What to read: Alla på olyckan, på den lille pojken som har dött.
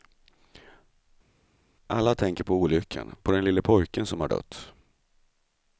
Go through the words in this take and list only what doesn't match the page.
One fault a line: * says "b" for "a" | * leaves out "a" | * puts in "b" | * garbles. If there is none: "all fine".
* puts in "tänker"